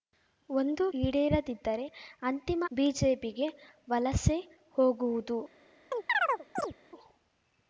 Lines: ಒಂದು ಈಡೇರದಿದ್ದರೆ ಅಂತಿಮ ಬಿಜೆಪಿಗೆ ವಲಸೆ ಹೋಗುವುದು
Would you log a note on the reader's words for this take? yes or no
no